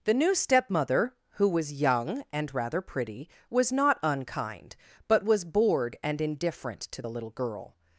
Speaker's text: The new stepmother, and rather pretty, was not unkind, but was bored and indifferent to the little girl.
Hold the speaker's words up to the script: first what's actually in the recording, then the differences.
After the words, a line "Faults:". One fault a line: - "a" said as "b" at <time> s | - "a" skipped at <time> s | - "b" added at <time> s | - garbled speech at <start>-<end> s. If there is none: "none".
The new stepmother, who was young and rather pretty, was not unkind, but was bored and indifferent to the little girl.
Faults:
- "who was young" added at 1.3 s